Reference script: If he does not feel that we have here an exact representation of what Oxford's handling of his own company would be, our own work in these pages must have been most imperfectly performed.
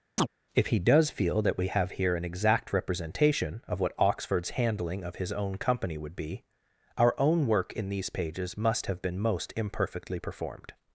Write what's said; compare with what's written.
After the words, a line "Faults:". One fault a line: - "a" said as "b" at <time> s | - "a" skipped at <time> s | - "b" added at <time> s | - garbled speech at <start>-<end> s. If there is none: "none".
If he does feel that we have here an exact representation of what Oxford's handling of his own company would be, our own work in these pages must have been most imperfectly performed.
Faults:
- "not" skipped at 1.1 s